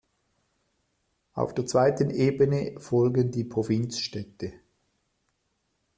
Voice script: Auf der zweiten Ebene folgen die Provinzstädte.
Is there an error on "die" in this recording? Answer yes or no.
no